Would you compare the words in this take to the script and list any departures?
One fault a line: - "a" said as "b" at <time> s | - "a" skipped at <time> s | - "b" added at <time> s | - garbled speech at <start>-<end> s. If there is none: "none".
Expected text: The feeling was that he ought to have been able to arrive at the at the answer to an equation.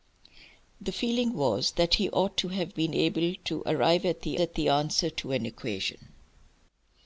none